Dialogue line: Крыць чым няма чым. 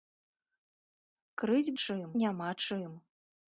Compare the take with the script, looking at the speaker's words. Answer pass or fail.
pass